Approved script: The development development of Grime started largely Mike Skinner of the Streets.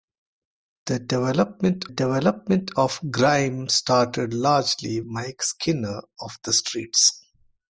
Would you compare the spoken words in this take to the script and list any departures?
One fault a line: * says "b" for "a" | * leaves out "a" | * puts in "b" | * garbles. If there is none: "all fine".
all fine